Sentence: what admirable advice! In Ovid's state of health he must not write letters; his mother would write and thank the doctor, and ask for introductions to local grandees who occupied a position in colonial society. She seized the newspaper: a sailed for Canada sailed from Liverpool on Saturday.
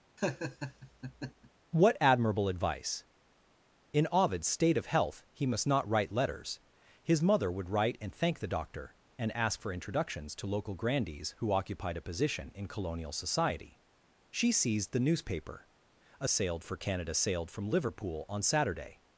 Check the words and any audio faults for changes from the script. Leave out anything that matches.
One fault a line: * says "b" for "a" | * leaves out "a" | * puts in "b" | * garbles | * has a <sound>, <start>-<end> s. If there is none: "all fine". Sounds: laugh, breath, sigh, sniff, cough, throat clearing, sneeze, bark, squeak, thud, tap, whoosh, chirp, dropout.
* has a laugh, 0.2-1.5 s